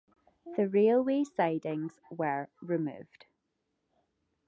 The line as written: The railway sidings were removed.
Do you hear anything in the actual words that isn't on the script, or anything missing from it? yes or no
no